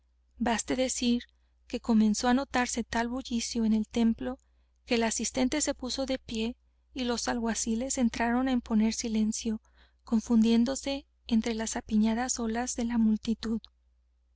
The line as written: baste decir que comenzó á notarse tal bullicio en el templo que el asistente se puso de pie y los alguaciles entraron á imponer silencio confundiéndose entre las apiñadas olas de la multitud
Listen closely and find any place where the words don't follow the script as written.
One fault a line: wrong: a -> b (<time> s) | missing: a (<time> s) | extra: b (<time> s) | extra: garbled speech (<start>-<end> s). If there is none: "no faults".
no faults